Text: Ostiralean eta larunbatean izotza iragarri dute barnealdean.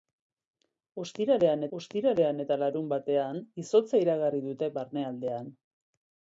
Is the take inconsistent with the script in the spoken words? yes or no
yes